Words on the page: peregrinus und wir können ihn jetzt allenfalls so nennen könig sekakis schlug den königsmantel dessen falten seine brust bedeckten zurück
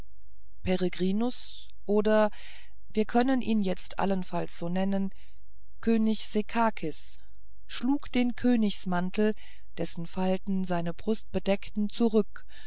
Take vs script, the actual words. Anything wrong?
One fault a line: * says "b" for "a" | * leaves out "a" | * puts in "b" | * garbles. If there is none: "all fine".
* says "oder" for "und"